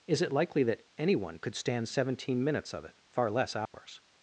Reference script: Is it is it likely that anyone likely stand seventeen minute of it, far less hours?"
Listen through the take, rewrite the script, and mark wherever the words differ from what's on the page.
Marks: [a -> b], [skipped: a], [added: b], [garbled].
Is it [skipped: is it] likely that anyone [likely -> could] stand seventeen [minute -> minutes] of it, far less hours?"